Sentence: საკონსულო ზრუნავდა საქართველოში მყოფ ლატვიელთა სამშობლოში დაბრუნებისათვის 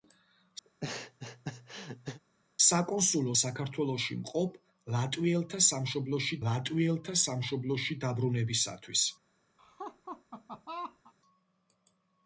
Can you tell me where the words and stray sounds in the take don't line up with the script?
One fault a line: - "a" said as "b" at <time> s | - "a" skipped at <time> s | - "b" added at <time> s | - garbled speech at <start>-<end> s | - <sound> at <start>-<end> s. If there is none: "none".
- laugh at 0.7-2.2 s
- "ზრუნავდა" skipped at 3.3 s
- "ლატვიელთა სამშობლოში" added at 6.5 s
- laugh at 9.6-11.1 s